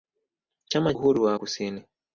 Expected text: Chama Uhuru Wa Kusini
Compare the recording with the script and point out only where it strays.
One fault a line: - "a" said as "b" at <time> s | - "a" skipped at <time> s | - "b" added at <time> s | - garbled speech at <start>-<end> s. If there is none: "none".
none